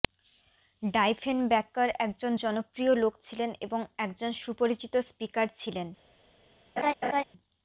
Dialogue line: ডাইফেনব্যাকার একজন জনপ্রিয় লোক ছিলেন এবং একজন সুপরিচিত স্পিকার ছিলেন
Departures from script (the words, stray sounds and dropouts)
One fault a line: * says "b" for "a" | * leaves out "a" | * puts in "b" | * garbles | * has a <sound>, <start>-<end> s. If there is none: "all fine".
* has a laugh, 6.8-7.2 s